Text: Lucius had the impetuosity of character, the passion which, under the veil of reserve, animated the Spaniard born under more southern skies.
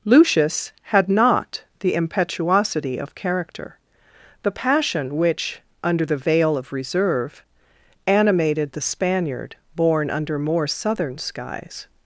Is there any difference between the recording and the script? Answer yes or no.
yes